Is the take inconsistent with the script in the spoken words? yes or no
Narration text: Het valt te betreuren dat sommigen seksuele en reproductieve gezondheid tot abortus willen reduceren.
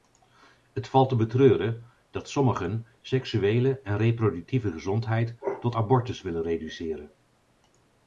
no